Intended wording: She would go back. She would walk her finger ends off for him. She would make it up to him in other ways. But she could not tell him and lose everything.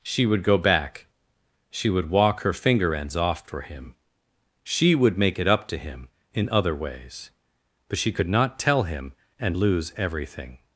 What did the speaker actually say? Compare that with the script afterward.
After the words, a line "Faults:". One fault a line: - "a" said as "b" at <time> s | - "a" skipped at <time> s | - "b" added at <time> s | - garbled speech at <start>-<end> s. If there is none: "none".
She would go back. She would walk her finger ends off for him. She would make it up to him in other ways. But she could not tell him and lose everything.
Faults:
none